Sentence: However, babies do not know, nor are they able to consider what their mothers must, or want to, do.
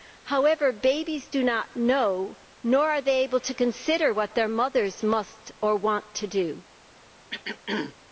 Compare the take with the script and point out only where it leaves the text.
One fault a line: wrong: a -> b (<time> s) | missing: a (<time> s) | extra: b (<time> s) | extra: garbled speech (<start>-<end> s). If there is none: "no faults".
no faults